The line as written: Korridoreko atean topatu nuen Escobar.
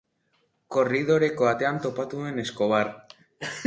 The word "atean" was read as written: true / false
true